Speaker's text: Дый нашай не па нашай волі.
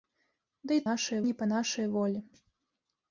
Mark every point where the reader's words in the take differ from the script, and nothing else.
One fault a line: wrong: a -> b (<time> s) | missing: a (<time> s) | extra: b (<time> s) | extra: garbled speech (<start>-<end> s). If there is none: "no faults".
no faults